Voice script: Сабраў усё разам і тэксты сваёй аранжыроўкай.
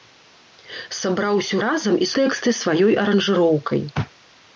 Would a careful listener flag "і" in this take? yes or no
no